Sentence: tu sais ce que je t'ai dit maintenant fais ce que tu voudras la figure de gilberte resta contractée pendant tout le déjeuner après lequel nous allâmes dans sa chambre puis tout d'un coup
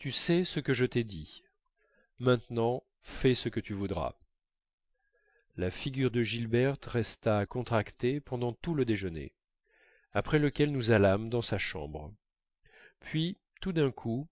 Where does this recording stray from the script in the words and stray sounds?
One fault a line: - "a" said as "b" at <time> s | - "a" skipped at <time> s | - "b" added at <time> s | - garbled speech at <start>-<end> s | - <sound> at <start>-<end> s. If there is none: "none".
none